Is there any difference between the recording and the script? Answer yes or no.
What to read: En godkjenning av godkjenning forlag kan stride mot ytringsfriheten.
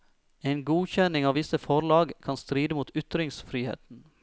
yes